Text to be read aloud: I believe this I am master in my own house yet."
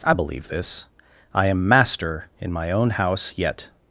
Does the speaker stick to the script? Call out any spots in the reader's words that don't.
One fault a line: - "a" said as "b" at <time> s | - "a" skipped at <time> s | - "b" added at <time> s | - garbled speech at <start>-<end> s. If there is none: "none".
none